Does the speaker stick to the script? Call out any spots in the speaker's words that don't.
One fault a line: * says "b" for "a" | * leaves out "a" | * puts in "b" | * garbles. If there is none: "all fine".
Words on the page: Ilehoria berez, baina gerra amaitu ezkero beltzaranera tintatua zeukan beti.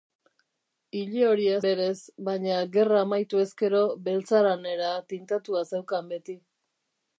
all fine